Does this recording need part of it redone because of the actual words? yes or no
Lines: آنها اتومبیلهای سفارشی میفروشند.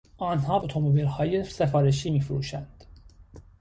no